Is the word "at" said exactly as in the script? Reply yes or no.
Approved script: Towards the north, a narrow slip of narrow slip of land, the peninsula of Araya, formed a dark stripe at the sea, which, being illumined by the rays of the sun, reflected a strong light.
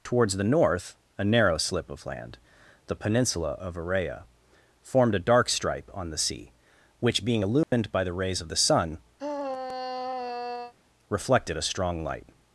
no